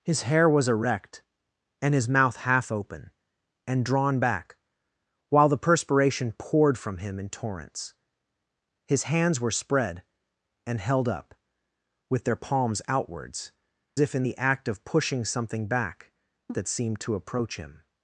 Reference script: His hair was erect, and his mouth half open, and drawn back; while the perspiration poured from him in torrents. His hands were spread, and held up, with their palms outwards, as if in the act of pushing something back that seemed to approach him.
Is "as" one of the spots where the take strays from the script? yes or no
yes